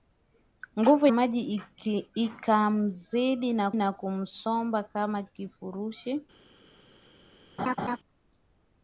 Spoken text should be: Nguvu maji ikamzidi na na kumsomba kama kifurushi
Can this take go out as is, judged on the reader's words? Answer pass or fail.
pass